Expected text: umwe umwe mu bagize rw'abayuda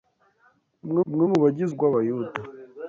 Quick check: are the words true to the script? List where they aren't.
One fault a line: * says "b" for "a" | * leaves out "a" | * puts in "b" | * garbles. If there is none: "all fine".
all fine